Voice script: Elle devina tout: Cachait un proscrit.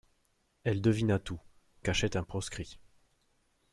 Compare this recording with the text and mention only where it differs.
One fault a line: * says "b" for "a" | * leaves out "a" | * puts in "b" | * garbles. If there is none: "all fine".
all fine